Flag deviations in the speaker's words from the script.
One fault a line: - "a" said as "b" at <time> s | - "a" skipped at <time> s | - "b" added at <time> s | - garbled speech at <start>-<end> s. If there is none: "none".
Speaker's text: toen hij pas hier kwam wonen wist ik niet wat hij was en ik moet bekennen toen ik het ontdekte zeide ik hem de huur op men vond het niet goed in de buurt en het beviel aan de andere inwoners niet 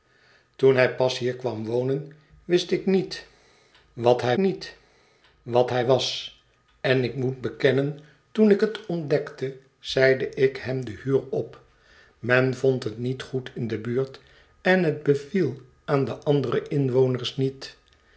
- "niet wat hij" added at 4.4 s